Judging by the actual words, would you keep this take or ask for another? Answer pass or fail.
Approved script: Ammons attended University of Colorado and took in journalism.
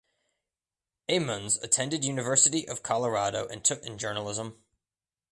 pass